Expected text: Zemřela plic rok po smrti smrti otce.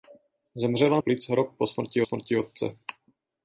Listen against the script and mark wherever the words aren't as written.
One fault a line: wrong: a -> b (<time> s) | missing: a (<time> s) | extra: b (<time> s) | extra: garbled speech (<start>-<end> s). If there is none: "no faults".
no faults